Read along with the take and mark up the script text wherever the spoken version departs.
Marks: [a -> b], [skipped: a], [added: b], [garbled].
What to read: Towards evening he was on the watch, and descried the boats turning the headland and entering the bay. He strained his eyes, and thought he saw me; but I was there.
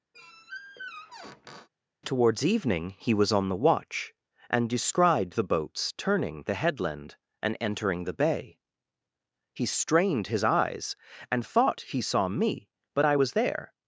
Towards evening he was on the watch, and descried the boats turning the headland and entering the bay. He strained his eyes, and thought he saw me; but I was there.